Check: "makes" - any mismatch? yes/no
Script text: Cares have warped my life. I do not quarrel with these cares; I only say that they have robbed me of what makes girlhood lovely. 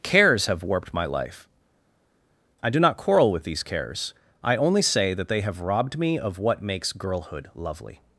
no